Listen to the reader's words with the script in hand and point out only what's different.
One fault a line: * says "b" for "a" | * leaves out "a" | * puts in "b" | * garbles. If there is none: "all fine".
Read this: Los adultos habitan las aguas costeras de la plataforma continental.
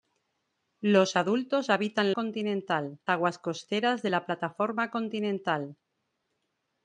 * says "continental" for "las"